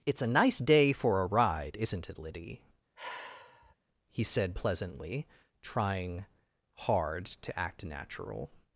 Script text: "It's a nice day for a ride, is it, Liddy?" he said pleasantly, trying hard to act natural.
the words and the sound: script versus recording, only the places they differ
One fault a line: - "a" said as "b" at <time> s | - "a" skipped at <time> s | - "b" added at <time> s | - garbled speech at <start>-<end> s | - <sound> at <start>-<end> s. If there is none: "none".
- "is" said as "isn't" at 1.8 s
- sigh at 3.0-3.8 s